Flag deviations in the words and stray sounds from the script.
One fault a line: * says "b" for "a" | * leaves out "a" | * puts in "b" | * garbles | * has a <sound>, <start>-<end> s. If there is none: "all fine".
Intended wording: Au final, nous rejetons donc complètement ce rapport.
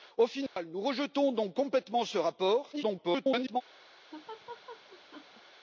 * has a dropout, 0.5-0.6 s
* garbles
* has a laugh, 4.1-5.4 s